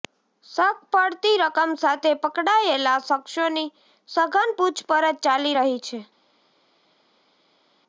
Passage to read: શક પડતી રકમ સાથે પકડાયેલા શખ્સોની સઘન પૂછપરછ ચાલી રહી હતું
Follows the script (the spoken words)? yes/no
no